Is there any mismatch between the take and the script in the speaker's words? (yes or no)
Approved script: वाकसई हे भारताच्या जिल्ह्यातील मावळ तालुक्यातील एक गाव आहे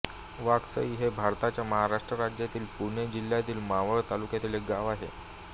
yes